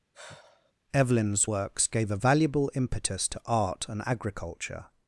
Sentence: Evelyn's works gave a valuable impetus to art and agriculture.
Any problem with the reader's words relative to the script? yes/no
no